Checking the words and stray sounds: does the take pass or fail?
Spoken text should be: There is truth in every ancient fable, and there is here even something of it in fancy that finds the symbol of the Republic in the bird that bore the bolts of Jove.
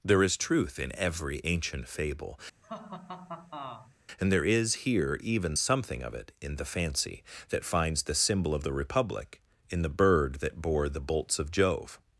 fail